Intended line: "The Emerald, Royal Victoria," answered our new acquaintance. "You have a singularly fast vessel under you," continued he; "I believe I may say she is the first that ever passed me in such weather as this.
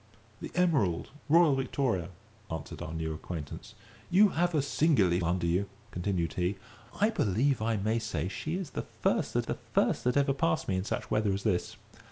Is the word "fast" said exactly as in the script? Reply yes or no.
no